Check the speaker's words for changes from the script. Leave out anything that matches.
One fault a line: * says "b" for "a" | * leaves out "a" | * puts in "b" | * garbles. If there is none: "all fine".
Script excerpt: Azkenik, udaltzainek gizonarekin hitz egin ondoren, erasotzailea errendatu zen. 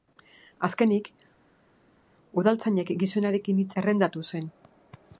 * leaves out "egin ondoren erasotzailea"